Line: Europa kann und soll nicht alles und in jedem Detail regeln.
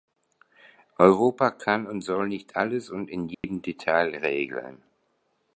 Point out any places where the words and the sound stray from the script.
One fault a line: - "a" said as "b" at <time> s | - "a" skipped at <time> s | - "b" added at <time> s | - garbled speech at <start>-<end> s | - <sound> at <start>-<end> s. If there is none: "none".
- dropout at 3.3-3.4 s